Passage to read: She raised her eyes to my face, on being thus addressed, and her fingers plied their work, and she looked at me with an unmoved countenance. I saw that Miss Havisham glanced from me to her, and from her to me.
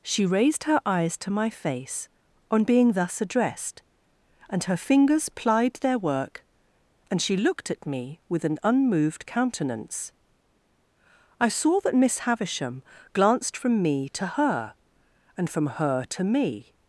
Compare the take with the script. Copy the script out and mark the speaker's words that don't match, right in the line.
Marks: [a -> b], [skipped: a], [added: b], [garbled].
She raised her eyes to my face, on being thus addressed, and her fingers plied their work, and she looked at me with an unmoved countenance. I saw that Miss Havisham glanced from me to her, and from her to me.